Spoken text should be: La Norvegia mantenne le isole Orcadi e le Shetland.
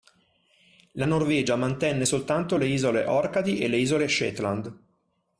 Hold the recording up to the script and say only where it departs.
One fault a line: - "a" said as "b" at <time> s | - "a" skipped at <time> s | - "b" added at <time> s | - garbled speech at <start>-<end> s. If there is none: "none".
- "soltanto" added at 2.0 s
- "Isole" added at 3.8 s